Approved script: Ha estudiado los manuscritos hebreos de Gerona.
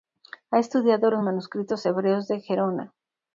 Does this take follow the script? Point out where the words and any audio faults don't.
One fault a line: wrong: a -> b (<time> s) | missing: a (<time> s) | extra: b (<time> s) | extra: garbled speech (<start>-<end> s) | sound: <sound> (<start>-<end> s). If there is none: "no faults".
no faults